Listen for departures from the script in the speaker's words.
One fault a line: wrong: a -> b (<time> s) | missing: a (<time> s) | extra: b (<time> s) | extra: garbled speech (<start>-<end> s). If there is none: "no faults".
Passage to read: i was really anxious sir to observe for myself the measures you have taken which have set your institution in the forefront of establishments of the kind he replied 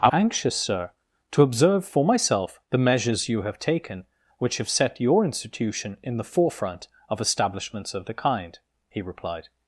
missing: was really (0.1 s)